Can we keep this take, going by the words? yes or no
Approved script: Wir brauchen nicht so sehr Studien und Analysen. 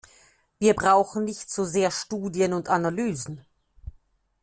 yes